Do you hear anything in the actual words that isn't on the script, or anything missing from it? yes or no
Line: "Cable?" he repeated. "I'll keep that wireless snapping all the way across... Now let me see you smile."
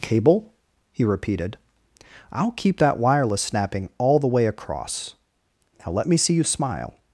no